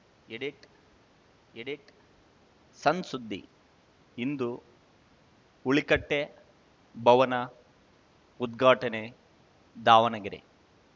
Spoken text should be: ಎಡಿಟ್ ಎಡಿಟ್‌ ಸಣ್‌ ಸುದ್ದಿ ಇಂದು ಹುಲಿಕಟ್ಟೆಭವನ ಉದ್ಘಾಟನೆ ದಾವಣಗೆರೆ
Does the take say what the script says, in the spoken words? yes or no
yes